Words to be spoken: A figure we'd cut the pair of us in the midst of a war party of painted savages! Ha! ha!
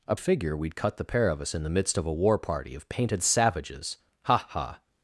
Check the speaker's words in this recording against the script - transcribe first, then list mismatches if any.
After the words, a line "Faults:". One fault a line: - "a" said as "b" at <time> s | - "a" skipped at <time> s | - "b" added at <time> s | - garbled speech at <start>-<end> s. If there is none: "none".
A figure we'd cut the pair of us in the midst of a war party of painted savages! Ha! ha!
Faults:
none